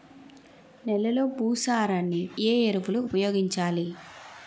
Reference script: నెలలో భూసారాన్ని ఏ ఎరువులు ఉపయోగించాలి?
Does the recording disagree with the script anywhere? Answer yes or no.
no